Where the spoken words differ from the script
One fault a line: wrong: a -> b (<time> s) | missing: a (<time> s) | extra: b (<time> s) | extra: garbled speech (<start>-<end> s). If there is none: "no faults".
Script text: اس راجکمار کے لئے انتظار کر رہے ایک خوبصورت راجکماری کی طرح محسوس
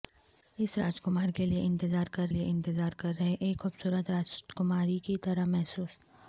extra: لئے انتظار کر (2.3 s)